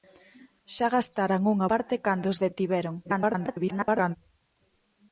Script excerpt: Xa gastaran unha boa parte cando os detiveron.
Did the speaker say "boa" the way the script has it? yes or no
no